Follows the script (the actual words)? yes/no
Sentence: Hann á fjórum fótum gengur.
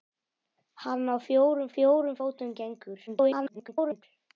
no